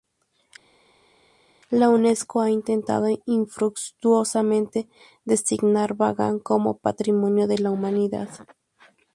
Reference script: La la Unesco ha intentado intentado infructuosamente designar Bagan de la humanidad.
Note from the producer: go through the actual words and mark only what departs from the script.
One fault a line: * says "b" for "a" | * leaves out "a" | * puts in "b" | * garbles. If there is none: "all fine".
* leaves out "la"
* leaves out "intentado"
* puts in "como Patrimonio"